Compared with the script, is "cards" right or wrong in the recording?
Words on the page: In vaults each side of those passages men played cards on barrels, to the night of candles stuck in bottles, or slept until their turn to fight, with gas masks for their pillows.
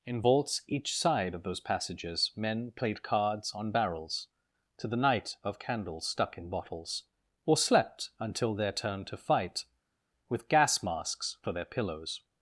right